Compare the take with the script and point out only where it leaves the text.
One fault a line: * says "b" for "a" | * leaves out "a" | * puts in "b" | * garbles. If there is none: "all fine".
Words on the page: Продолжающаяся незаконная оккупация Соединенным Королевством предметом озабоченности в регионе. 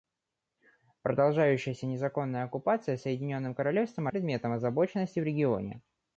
all fine